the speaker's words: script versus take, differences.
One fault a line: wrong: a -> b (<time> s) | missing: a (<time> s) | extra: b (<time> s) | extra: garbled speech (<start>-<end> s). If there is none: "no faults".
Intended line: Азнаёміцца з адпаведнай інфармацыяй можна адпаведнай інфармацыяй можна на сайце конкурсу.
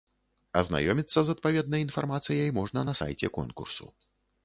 missing: адпаведнай інфармацыяй можна (2.9 s)